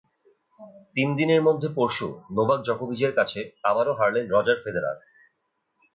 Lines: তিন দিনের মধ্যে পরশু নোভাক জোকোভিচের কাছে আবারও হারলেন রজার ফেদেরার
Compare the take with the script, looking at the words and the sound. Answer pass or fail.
pass